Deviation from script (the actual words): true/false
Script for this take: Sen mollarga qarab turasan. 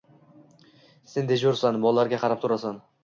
true